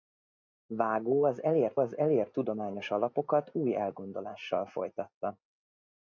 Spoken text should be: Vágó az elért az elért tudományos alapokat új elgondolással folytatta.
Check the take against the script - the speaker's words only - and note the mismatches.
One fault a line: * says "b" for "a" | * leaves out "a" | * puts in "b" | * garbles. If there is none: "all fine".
all fine